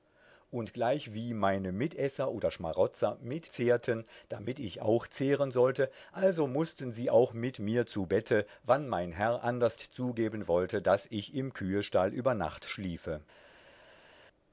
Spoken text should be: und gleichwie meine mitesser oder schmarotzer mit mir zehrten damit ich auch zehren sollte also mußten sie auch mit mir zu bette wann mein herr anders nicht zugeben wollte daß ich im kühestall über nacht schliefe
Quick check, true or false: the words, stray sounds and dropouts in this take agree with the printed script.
false